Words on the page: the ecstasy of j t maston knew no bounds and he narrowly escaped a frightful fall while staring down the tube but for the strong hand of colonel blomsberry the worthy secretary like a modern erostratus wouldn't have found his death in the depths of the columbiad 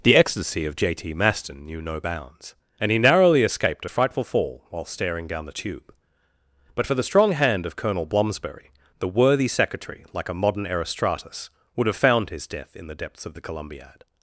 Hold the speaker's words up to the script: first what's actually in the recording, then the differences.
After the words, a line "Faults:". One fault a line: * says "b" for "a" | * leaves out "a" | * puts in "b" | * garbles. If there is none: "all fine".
the ecstasy of j t maston knew no bounds and he narrowly escaped a frightful fall while staring down the tube but for the strong hand of colonel blomsberry the worthy secretary like a modern erostratus would have found his death in the depths of the columbiad
Faults:
* says "would" for "wouldn't"